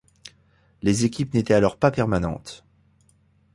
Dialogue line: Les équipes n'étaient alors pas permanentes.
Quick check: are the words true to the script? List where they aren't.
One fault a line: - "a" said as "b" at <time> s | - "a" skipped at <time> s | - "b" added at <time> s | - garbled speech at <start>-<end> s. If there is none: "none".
none